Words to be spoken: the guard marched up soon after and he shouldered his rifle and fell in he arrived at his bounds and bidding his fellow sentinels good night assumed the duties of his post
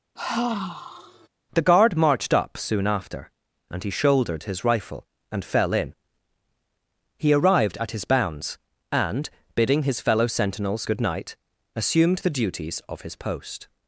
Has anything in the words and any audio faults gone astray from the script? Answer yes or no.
yes